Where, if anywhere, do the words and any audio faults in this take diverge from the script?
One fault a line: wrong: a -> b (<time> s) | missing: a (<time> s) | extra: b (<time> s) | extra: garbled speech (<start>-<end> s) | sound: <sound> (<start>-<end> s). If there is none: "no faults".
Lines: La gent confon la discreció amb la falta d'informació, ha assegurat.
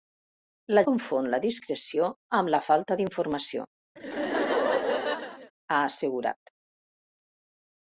missing: gent (0.8 s)
sound: laugh (4.0-5.5 s)